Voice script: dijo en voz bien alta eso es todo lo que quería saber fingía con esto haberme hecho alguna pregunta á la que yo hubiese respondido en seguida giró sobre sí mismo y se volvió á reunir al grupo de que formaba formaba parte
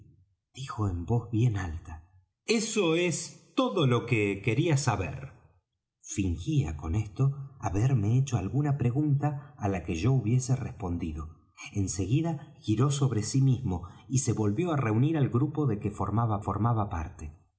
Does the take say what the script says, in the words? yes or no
yes